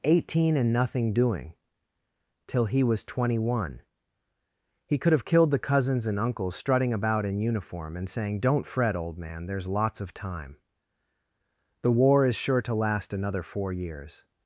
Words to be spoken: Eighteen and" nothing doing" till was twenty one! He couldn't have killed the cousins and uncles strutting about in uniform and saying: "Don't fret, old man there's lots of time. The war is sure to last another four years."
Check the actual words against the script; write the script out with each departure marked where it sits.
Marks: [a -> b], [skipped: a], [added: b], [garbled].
Eighteen and" nothing doing" till [added: he] was twenty one! He [couldn't -> could] have killed the cousins and uncles strutting about in uniform and saying: "Don't fret, old man there's lots of time. The war is sure to last another four years."